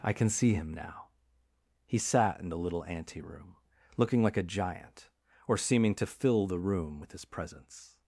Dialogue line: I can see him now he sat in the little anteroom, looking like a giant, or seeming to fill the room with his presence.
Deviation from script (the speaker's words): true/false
false